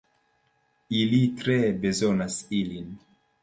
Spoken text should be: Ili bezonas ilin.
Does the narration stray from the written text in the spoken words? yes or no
yes